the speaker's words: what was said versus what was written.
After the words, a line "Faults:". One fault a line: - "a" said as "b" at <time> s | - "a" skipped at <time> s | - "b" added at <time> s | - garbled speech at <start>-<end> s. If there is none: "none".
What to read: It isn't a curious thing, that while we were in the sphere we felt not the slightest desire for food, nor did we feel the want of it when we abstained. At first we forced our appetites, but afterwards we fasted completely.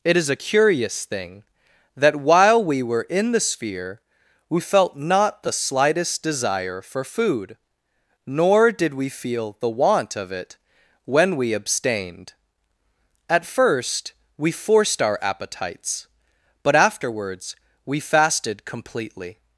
It is a curious thing, that while we were in the sphere we felt not the slightest desire for food, nor did we feel the want of it when we abstained. At first we forced our appetites, but afterwards we fasted completely.
Faults:
- "isn't" said as "is" at 0.2 s